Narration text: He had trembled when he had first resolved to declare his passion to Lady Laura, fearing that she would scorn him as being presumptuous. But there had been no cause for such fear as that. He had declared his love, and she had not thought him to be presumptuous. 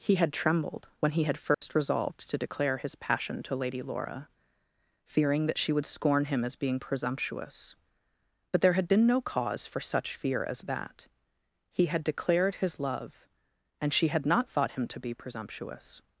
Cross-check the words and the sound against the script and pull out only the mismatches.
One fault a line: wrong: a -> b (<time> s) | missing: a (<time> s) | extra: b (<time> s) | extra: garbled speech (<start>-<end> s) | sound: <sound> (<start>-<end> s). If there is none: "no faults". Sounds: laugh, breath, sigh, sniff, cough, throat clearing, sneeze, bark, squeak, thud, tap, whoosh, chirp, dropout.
sound: dropout (1.5-1.6 s)